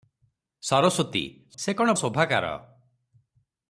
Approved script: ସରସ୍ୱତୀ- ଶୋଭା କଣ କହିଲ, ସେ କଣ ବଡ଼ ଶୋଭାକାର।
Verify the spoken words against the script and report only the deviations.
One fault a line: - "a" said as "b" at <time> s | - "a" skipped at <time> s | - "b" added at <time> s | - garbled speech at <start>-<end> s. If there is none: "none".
- "ଶୋଭା କଣ କହିଲ" skipped at 1.6 s
- "ବଡ଼" skipped at 1.9 s